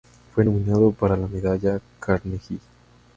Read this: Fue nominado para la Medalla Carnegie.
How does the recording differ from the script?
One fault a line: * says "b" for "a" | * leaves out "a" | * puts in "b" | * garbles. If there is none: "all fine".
all fine